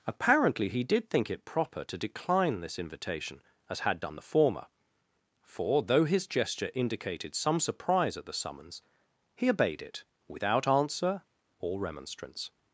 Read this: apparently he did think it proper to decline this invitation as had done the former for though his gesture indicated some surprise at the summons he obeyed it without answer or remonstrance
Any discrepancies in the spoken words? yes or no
no